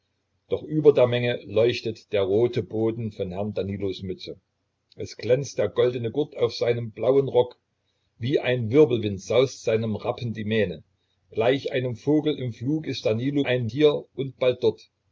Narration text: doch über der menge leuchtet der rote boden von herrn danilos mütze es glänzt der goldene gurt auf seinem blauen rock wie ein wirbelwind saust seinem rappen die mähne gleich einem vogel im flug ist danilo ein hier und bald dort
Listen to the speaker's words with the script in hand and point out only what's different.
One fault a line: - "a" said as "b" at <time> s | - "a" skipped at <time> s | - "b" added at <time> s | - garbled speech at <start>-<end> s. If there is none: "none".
none